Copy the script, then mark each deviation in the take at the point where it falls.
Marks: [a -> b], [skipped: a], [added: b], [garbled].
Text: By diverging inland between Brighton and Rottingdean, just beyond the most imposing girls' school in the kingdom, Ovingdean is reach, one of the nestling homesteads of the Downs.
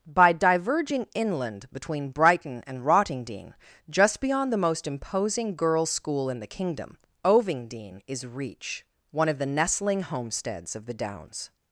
By diverging inland between Brighton and Rottingdean, just beyond the most imposing girls' school in the kingdom, Ovingdean is reach, one of the nestling homesteads of the Downs.